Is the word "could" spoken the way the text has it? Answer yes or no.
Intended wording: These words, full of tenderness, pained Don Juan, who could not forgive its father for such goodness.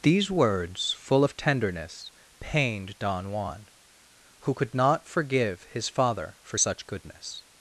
yes